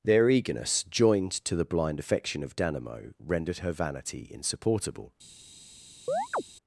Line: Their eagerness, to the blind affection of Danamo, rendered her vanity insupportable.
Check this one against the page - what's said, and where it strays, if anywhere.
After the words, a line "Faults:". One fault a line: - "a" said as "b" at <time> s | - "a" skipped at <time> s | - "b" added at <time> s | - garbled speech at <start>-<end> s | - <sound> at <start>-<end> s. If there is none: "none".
Their eagerness, joined to the blind affection of Danamo, rendered her vanity insupportable.
Faults:
- "joined" added at 0.8 s
- chirp at 6.1-6.4 s